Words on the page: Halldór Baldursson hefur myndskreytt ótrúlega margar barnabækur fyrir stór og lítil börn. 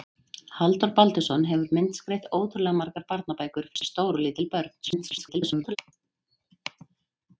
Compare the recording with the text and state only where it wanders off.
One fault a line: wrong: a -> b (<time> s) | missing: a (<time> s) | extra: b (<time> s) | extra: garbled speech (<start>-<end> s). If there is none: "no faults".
extra: garbled speech (4.8-5.8 s)